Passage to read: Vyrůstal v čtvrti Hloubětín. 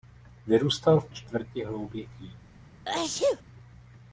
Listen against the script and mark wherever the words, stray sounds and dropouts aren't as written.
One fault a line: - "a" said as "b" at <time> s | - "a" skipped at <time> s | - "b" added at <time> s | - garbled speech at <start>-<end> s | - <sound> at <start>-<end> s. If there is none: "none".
- sneeze at 2.9-3.4 s